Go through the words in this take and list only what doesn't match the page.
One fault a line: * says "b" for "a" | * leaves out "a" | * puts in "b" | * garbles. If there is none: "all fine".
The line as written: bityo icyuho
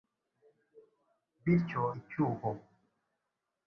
all fine